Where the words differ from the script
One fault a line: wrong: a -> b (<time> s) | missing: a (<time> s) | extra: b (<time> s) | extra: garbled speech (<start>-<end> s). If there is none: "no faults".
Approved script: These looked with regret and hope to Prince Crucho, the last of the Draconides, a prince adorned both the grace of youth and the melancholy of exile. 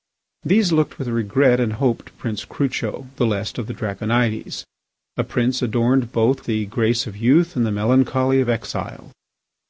no faults